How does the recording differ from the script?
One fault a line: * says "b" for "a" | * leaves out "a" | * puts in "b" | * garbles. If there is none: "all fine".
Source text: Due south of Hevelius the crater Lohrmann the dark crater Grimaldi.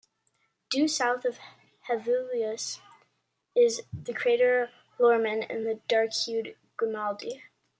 * puts in "is"
* puts in "and"
* says "hued" for "crater"